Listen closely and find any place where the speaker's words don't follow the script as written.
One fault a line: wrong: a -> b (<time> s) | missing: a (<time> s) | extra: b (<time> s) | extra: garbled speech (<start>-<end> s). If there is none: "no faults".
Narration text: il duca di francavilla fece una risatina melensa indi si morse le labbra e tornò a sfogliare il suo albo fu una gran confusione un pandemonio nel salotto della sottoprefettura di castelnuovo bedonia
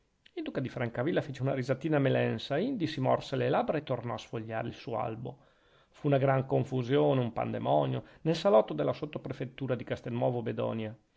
no faults